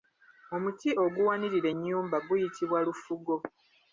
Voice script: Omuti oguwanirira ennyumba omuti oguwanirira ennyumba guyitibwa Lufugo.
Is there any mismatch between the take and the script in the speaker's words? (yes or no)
yes